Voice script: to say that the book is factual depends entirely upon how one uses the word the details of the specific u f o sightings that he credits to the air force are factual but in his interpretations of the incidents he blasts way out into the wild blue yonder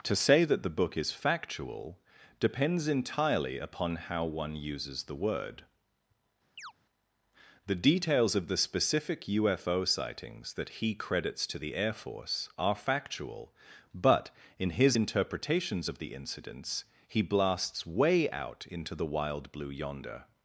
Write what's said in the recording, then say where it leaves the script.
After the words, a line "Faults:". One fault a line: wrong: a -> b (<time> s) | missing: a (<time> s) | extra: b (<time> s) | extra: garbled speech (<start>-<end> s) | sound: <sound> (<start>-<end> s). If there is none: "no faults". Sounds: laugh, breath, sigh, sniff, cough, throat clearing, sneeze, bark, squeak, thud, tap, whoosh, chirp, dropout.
to say that the book is factual depends entirely upon how one uses the word the details of the specific u f o sightings that he credits to the air force are factual but in his interpretations of the incidents he blasts way out into the wild blue yonder
Faults:
sound: chirp (6.6-6.7 s)